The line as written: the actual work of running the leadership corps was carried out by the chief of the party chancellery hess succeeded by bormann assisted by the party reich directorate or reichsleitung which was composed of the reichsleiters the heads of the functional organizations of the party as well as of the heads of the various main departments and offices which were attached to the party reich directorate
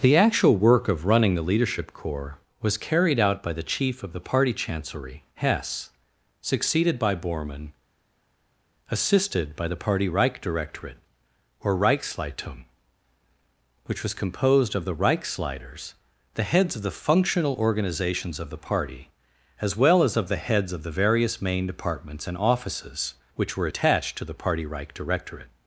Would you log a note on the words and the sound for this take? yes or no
no